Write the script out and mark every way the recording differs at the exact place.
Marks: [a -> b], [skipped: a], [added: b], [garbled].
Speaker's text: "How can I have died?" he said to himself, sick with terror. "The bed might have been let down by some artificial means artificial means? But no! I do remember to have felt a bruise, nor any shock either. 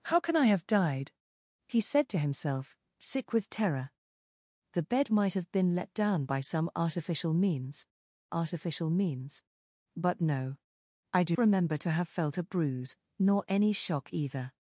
"How can I have died?" he said to himself, sick with terror. "The bed might have been let down by some artificial means artificial means? But no! I do remember to have felt a bruise, nor any shock either.